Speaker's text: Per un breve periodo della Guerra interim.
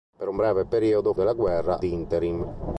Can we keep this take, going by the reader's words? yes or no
yes